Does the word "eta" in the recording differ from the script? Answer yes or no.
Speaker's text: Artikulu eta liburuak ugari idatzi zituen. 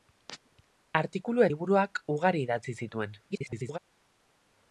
yes